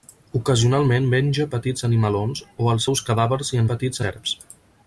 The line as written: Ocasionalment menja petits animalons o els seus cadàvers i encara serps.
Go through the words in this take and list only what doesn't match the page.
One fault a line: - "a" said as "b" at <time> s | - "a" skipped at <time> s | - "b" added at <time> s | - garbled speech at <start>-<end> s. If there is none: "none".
- "encara" said as "petits" at 3.7 s